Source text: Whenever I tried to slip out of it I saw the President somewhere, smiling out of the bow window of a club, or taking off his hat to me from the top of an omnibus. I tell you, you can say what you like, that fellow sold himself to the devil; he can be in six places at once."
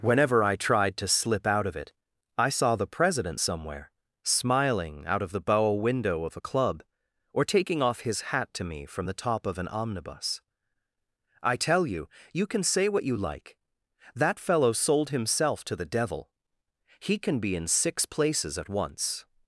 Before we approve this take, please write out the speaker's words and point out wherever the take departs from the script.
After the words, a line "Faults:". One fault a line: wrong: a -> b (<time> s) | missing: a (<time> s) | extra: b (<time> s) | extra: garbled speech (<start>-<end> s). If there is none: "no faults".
Whenever I tried to slip out of it I saw the President somewhere, smiling out of the bow window of a club, or taking off his hat to me from the top of an omnibus. I tell you, you can say what you like, that fellow sold himself to the devil; he can be in six places at once."
Faults:
no faults